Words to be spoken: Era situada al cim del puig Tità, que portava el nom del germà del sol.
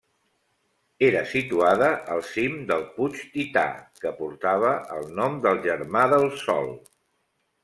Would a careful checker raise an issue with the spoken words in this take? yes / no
no